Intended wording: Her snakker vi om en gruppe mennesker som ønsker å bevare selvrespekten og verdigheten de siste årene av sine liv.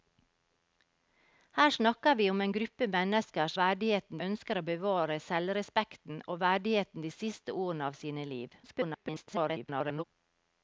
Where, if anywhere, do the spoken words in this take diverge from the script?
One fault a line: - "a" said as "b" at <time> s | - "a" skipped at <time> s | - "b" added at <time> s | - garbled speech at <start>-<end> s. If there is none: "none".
- "som" said as "verdigheten" at 3.6 s
- garbled speech at 8.6-10.0 s